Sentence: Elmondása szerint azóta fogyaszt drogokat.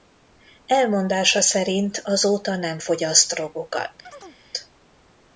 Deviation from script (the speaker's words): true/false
true